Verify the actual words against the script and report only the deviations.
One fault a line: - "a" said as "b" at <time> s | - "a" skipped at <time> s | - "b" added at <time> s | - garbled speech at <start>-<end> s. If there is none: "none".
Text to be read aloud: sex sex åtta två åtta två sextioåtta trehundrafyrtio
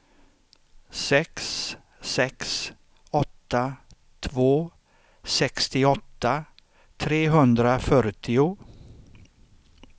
- "åtta två" skipped at 4.7 s